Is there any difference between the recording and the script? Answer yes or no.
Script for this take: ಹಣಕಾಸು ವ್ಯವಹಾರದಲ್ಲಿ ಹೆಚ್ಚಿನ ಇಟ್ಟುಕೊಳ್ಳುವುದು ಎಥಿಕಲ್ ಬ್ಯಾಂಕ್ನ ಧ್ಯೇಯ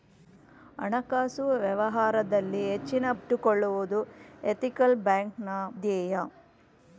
no